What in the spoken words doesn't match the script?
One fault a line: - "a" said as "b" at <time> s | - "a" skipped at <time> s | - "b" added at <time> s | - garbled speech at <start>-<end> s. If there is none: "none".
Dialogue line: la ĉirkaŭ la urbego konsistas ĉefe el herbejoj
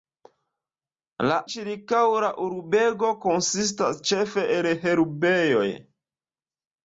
none